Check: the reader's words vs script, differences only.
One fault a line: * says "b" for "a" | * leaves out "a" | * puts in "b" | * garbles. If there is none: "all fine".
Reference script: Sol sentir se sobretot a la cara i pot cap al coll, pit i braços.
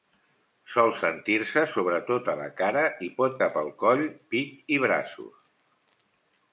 all fine